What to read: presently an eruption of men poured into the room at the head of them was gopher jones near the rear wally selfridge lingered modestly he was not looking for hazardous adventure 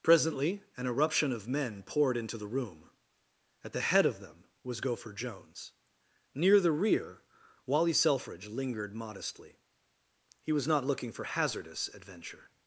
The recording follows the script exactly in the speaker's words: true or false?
true